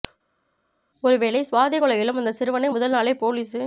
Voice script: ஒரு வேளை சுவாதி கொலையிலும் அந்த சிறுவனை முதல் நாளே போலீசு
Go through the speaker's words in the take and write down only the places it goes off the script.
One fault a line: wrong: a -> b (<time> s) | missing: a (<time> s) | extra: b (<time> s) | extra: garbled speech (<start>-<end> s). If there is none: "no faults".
no faults